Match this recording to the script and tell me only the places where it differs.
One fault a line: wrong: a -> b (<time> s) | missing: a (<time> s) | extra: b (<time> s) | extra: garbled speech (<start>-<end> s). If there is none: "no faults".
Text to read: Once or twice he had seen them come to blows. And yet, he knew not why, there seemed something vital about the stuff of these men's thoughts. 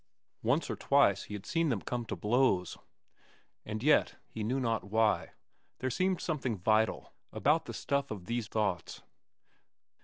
missing: men's (8.5 s)